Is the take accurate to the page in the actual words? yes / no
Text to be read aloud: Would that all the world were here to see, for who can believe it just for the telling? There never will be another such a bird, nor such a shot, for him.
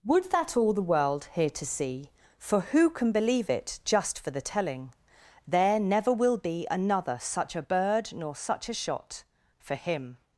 no